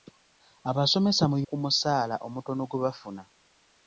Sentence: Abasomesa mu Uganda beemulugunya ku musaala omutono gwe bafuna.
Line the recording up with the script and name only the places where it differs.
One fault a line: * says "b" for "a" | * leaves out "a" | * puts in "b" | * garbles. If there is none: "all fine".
* leaves out "Uganda beemulugunya"